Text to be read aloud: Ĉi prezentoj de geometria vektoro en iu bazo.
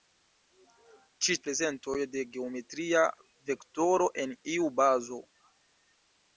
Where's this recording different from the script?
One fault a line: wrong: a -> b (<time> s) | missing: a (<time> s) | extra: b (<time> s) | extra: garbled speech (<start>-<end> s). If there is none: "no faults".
no faults